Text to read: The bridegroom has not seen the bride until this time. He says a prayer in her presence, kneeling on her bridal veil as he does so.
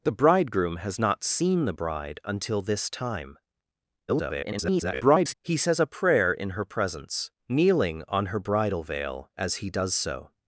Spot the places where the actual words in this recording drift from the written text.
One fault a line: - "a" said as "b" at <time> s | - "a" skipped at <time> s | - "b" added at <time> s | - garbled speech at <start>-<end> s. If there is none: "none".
- garbled speech at 4.1-5.3 s